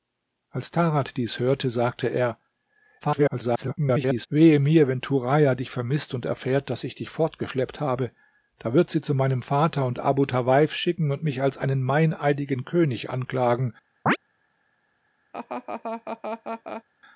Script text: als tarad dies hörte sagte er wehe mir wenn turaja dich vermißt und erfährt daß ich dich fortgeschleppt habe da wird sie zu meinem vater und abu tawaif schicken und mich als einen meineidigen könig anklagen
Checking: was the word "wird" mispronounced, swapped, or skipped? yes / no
no